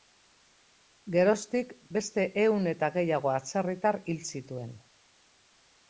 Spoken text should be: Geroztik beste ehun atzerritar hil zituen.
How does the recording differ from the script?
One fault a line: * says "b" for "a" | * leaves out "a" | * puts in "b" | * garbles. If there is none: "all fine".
* puts in "eta gehiago"